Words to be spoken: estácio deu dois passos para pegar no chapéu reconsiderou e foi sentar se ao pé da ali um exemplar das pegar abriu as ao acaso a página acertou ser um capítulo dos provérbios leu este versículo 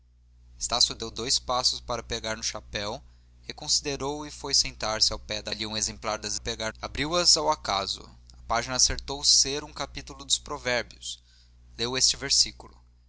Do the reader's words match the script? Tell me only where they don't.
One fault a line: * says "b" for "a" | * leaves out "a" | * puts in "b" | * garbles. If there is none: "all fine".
all fine